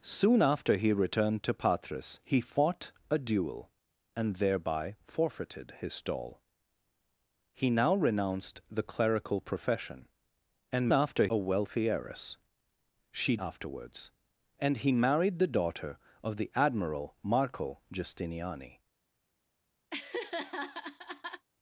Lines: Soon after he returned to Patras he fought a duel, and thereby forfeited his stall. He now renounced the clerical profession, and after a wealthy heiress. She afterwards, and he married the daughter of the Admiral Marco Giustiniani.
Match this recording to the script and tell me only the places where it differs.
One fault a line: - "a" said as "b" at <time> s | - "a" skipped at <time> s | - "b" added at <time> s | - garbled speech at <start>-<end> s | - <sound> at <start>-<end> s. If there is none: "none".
- laugh at 19.9-21.5 s